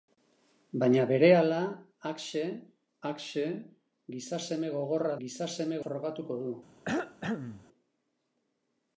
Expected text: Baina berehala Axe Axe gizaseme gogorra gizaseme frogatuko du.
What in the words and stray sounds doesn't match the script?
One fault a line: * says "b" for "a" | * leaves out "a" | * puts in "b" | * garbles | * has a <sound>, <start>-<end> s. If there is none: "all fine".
* has a cough, 6.9-7.7 s